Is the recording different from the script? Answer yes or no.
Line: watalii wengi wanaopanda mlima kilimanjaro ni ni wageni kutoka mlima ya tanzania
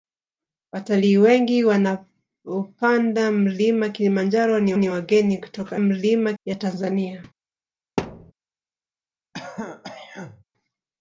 no